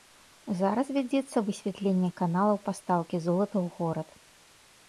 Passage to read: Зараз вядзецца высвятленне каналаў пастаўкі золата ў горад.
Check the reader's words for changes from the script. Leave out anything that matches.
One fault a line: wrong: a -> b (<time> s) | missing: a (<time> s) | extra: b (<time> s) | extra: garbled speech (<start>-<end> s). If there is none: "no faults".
no faults